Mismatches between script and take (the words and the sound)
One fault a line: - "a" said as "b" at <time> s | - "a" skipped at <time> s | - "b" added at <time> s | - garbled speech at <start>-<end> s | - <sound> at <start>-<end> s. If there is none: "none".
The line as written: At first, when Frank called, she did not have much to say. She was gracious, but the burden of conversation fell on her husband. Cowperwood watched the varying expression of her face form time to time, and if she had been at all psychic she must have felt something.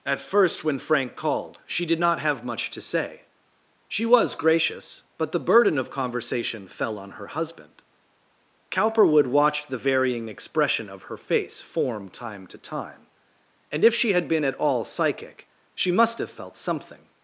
none